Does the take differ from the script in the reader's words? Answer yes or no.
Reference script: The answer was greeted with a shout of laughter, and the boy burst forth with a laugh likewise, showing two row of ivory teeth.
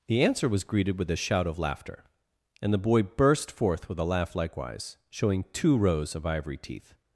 yes